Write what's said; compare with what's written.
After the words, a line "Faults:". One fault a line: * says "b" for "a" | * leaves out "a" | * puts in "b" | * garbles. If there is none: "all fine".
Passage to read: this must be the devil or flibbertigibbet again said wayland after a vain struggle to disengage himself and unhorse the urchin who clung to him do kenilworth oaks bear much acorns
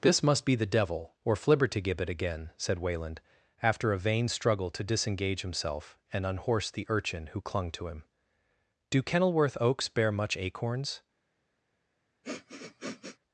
this must be the devil or flibbertigibbet again said wayland after a vain struggle to disengage himself and unhorse the urchin who clung to him do kenilworth oaks bear much acorns
Faults:
all fine